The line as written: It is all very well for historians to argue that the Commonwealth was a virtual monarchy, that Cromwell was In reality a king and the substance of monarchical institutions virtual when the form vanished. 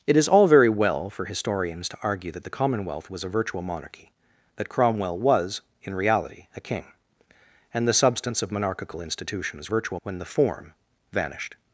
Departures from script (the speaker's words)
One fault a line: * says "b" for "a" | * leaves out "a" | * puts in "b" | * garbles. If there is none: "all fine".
all fine